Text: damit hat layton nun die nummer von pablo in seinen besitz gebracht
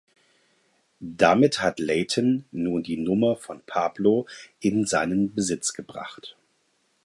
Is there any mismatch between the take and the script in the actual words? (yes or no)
no